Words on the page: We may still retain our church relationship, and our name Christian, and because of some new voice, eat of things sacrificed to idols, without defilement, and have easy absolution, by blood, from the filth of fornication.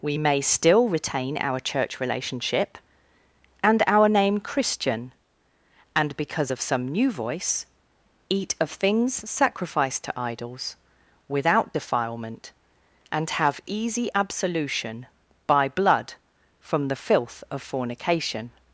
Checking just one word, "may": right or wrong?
right